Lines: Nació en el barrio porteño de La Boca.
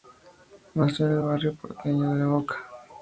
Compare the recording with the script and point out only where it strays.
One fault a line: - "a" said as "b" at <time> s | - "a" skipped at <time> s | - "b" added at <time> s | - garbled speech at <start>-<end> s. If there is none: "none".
none